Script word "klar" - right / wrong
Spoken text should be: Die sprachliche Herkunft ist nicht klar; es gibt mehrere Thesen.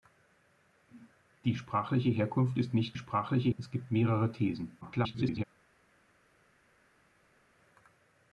wrong